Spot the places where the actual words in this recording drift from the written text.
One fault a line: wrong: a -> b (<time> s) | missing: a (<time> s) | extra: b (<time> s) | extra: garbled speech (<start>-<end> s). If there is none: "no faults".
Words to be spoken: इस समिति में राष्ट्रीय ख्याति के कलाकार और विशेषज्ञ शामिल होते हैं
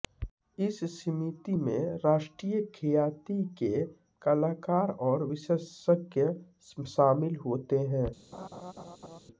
no faults